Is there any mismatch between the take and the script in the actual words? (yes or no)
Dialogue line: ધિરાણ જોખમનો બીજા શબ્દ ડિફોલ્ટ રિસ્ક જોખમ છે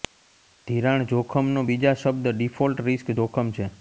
no